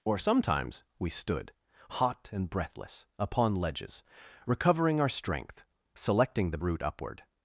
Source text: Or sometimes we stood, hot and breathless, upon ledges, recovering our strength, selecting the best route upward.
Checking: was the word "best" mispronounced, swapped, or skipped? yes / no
yes